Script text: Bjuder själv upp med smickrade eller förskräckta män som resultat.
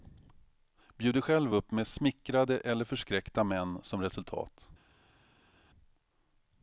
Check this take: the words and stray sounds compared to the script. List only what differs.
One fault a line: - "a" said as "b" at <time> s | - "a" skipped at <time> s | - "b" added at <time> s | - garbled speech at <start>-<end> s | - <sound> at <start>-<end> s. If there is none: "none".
none